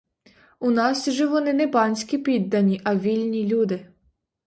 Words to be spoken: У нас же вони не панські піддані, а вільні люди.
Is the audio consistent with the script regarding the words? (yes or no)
yes